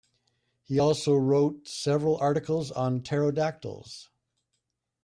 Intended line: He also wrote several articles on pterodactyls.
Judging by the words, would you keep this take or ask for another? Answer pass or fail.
pass